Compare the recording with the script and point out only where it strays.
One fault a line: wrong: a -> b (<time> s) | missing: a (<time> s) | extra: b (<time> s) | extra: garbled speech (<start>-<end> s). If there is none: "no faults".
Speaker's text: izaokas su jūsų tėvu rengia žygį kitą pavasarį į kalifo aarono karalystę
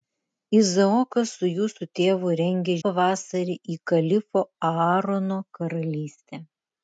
missing: žygį kitą (2.8 s)